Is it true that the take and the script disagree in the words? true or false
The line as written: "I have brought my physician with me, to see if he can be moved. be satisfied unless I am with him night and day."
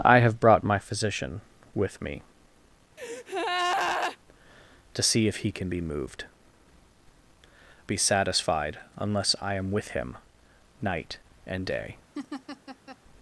false